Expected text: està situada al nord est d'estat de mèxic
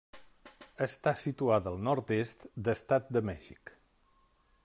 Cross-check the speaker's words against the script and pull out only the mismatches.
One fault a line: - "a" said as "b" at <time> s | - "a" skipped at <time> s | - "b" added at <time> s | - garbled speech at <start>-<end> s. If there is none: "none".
none